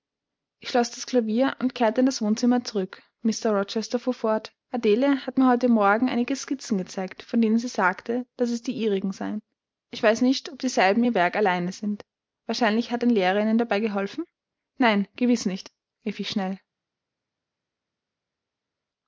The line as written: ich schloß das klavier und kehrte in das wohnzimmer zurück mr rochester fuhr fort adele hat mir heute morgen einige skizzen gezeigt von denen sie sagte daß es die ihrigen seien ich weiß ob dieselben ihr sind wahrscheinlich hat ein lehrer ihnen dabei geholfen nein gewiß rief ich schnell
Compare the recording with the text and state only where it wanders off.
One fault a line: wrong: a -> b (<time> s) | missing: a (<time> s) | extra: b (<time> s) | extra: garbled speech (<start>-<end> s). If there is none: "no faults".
extra: nicht (10.2 s)
extra: werk allein (11.1 s)
extra: nicht (15.4 s)